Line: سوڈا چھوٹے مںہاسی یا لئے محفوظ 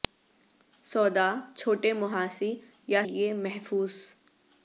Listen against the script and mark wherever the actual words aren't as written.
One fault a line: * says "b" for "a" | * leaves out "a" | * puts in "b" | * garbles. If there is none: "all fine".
all fine